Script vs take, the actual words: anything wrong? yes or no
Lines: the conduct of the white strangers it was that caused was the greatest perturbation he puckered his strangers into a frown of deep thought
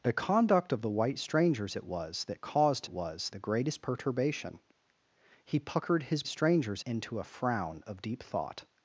no